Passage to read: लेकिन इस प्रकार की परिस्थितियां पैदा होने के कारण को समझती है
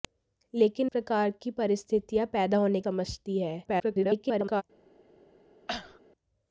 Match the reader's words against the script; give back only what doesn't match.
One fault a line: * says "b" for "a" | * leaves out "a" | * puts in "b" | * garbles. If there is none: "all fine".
* leaves out "इस"
* leaves out "के कारण को"
* garbles